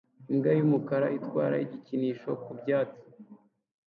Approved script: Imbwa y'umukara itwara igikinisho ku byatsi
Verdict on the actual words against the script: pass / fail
pass